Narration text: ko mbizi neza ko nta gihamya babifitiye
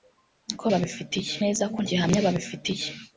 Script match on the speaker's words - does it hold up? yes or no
no